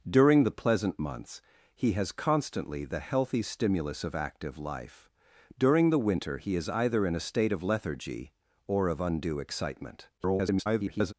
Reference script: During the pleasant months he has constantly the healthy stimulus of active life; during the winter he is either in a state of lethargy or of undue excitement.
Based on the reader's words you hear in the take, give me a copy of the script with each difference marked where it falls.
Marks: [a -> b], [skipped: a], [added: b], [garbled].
During the pleasant months he has constantly the healthy stimulus of active life; during the winter he is either in a state of lethargy or of undue excitement. [garbled]